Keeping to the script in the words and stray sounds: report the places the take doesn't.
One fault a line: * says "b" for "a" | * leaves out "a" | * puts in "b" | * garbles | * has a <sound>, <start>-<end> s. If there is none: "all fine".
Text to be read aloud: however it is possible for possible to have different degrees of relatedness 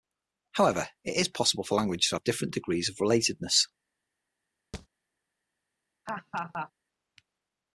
* says "languages" for "possible"
* has a thud, 4.7-4.9 s
* has a laugh, 6.1-6.7 s